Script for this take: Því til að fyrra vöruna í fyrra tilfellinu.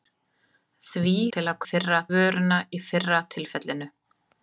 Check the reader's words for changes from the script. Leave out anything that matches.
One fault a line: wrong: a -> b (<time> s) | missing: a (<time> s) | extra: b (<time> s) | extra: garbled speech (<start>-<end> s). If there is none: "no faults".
no faults